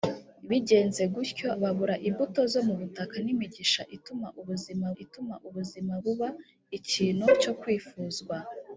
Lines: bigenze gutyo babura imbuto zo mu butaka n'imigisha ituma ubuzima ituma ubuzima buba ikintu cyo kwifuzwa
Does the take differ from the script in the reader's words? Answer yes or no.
no